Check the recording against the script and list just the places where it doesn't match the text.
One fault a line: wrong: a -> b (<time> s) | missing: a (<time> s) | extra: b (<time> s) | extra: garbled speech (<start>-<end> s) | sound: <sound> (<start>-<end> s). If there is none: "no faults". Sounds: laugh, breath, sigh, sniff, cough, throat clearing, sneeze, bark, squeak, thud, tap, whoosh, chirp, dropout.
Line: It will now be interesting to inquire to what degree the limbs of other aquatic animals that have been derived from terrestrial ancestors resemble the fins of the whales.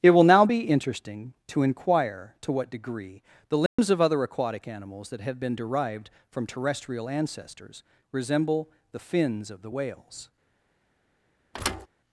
sound: dropout (3.7-3.8 s)
sound: thud (11.5-11.9 s)